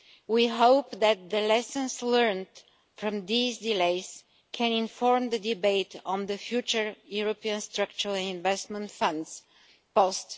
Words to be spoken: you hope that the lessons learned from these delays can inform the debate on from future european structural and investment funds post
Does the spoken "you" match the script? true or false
false